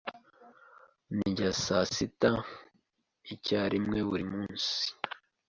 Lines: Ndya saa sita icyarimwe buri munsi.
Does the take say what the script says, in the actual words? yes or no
yes